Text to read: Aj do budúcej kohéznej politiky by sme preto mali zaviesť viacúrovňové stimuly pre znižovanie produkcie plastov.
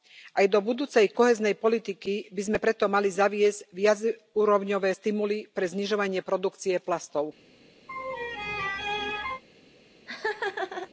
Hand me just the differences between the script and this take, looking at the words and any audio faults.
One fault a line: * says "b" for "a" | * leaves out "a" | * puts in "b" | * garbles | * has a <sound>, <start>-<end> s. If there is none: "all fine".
* has a laugh, 7.9-9.4 s
* has a laugh, 10.1-10.9 s